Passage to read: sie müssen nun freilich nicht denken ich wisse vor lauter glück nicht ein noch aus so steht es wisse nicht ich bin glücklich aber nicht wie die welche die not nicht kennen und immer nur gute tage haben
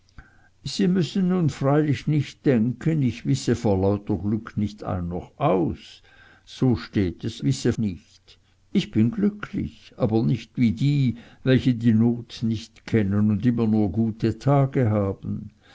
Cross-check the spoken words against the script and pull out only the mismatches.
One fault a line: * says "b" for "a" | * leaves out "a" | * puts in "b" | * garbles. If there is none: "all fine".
all fine